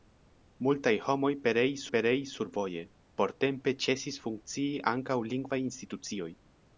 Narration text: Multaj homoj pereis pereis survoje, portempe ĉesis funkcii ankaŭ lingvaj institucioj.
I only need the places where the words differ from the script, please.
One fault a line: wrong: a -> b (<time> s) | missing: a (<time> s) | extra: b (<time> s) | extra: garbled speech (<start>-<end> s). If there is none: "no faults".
no faults